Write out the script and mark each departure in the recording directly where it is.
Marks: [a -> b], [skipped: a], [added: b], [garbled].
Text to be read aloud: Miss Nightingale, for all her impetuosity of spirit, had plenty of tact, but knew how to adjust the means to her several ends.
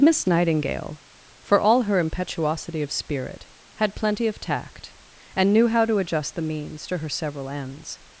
Miss Nightingale, for all her impetuosity of spirit, had plenty of tact, [but -> and] knew how to adjust the means to her several ends.